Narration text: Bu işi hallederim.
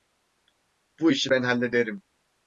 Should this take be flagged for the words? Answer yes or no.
yes